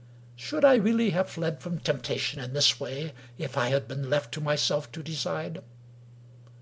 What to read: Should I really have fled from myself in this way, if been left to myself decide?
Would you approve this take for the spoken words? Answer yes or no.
no